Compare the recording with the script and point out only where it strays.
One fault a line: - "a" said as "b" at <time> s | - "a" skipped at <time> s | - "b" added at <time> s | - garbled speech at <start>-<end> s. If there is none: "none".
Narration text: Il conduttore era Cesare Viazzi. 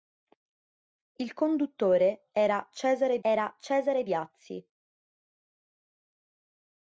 - "era Cesare" added at 3.2 s